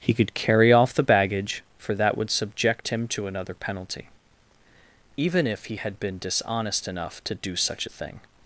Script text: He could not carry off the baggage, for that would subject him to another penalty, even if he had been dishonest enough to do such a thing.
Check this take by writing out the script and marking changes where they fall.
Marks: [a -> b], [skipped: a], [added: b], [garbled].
He could [skipped: not] carry off the baggage, for that would subject him to another penalty, even if he had been dishonest enough to do such a thing.